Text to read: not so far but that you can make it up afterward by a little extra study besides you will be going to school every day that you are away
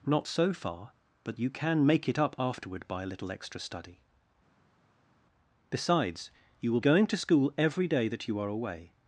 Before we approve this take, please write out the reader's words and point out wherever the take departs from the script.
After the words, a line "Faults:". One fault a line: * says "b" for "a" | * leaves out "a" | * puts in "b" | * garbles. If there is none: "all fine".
not so far but you can make it up afterward by a little extra study besides you will going to school every day that you are away
Faults:
* leaves out "that"
* leaves out "be"